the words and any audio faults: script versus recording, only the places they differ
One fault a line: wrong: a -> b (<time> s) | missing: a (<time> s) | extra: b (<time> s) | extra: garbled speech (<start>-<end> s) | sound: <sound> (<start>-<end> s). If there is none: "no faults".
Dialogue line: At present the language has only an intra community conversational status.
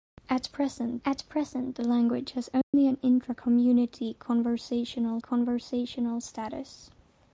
extra: at present (1.1 s)
sound: dropout (2.6-2.7 s)
extra: conversational (5.2 s)